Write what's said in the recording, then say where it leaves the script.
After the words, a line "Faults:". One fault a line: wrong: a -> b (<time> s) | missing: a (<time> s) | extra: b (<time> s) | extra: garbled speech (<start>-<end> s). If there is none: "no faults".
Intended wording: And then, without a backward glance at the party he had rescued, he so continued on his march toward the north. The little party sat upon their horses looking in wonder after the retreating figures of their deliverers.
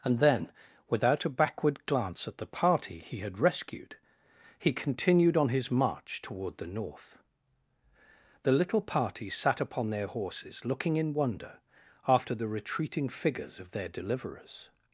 And then, without a backward glance at the party he had rescued, he continued on his march toward the north. The little party sat upon their horses looking in wonder after the retreating figures of their deliverers.
Faults:
missing: so (4.7 s)